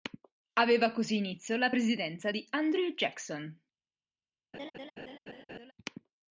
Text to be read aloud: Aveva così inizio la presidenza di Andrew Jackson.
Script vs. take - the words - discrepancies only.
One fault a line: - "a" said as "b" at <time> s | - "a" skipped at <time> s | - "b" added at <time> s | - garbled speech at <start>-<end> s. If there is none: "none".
none